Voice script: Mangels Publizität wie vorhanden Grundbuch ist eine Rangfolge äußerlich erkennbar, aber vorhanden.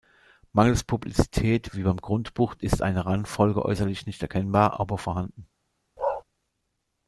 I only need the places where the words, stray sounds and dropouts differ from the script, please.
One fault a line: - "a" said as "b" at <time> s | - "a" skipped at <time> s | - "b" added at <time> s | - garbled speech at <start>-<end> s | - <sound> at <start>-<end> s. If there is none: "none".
- "vorhanden" said as "beim" at 1.8 s
- "nicht" added at 4.1 s
- bark at 6.0-6.2 s